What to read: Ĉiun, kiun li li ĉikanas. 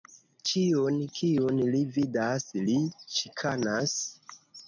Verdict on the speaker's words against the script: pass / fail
fail